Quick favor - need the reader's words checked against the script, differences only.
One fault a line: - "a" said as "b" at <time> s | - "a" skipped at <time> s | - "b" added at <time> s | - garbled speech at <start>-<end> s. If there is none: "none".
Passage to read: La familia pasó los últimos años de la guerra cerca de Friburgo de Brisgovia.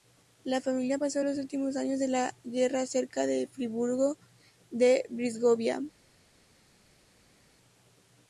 none